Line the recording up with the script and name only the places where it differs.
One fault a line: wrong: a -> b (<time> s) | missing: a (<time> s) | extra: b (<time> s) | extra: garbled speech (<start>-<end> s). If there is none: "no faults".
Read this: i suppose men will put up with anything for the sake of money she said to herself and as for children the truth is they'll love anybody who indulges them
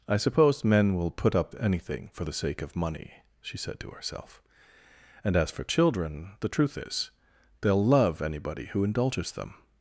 missing: with (1.5 s)